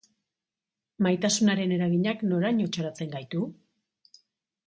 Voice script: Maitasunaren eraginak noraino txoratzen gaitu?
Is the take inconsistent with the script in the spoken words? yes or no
no